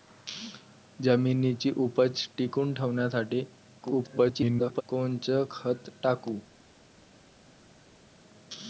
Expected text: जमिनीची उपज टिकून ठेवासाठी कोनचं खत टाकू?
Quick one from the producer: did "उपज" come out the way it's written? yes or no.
yes